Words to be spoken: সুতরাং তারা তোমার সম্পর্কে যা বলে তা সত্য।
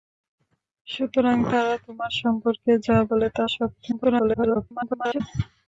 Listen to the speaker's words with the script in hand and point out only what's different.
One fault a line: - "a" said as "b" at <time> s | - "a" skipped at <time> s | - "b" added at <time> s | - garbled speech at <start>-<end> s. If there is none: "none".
- garbled speech at 3.9-5.2 s